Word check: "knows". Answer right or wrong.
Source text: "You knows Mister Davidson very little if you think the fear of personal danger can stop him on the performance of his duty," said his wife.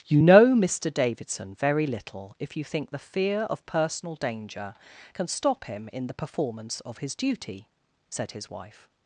wrong